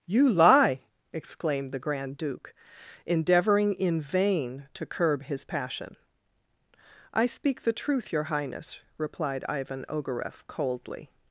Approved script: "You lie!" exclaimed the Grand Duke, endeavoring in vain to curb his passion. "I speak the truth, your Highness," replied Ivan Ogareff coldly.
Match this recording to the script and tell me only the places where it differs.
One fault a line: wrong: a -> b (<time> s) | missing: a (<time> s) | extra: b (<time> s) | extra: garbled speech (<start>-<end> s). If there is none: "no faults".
no faults